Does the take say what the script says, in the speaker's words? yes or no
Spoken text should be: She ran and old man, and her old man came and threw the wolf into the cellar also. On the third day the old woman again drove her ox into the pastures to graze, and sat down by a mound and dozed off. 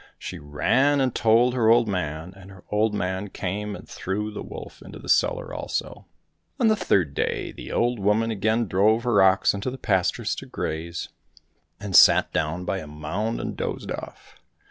no